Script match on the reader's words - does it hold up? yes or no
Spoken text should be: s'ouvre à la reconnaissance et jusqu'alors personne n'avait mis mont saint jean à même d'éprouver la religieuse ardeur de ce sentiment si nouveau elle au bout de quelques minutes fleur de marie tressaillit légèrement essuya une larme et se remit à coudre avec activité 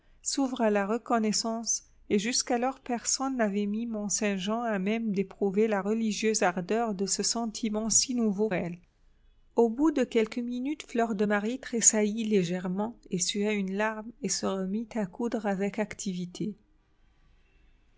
yes